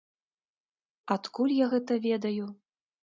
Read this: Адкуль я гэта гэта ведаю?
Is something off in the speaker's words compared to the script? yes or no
yes